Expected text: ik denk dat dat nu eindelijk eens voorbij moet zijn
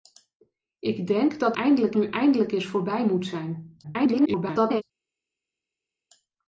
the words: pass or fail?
fail